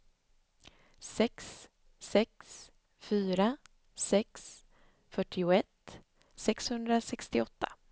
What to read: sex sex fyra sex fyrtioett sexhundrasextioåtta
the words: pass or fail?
pass